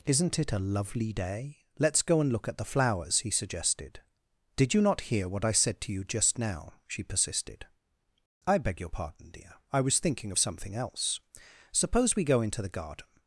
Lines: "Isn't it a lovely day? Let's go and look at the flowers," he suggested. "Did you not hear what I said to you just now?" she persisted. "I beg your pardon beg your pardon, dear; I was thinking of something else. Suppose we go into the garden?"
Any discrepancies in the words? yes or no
yes